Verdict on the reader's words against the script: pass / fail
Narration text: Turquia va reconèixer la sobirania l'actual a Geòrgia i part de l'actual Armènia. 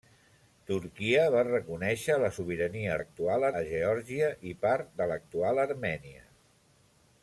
pass